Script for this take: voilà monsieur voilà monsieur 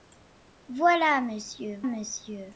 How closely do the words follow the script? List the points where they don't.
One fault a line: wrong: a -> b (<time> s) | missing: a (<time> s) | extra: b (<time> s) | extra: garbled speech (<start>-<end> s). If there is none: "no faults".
missing: voilà (1.8 s)